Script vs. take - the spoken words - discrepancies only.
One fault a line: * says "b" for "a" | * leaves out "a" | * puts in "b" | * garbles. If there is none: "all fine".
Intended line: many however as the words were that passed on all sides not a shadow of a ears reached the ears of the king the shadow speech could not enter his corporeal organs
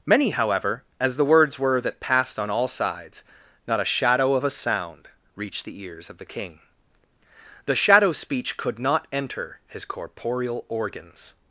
* says "sound" for "ears"